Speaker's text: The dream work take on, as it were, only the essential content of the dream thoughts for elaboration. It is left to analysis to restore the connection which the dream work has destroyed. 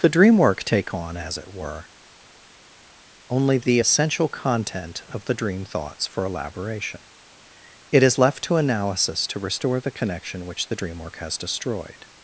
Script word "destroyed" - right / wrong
right